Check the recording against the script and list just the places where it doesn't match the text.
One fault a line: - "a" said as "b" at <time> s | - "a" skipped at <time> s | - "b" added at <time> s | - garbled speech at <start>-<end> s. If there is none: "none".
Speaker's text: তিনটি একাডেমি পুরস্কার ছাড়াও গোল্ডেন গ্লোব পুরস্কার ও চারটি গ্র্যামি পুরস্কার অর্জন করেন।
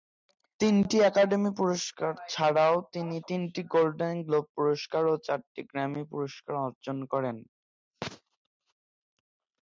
- "তিনি তিনটি" added at 2.9 s